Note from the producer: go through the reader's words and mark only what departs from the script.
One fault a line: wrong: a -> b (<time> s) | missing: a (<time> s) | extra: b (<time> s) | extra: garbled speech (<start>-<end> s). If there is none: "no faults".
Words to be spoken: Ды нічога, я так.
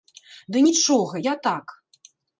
no faults